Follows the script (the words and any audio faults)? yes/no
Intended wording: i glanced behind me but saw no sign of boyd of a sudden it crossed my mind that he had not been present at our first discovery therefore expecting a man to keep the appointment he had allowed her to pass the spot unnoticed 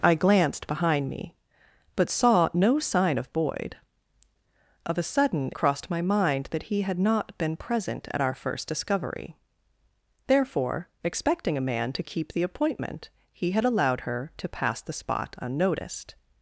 no